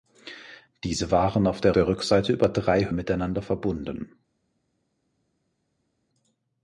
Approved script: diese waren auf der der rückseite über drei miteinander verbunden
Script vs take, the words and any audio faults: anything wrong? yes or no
no